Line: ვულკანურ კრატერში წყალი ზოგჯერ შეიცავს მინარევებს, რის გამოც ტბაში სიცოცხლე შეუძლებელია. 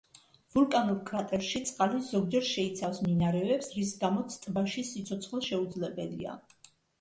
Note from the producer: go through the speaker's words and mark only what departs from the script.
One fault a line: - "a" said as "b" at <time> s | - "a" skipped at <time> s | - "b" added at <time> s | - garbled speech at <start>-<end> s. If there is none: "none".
none